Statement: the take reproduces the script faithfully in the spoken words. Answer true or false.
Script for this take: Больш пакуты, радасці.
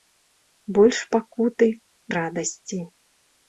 true